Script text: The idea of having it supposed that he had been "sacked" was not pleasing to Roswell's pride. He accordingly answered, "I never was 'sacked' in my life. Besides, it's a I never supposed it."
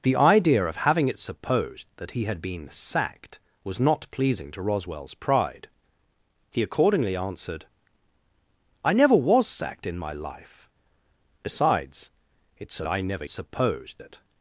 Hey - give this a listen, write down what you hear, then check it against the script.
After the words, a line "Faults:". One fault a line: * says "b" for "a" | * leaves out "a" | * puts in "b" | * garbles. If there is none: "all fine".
The idea of having it supposed that he had been "sacked" was not pleasing to Roswell's pride. He accordingly answered, "I never was 'sacked' in my life. Besides, it's a I never supposed it."
Faults:
all fine